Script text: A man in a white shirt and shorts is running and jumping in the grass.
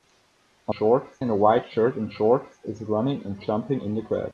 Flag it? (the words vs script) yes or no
yes